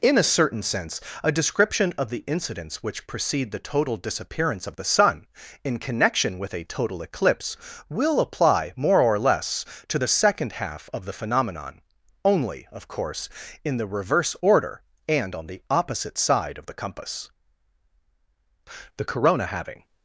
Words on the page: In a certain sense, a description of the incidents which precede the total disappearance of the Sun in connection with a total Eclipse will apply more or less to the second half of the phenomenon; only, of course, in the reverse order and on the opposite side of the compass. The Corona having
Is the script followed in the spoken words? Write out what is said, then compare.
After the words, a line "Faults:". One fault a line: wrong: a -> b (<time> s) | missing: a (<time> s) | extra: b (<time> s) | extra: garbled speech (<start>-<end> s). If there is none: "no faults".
In a certain sense, a description of the incidents which precede the total disappearance of the Sun in connection with a total Eclipse will apply more or less to the second half of the phenomenon; only, of course, in the reverse order and on the opposite side of the compass. The Corona having
Faults:
no faults